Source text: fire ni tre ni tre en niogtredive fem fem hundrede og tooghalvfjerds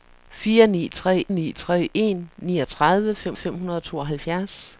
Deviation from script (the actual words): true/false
false